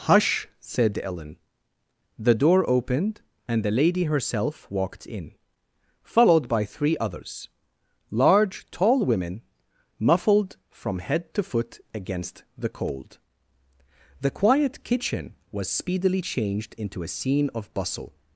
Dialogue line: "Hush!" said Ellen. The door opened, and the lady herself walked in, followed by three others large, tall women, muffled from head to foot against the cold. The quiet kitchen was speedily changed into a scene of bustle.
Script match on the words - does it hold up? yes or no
yes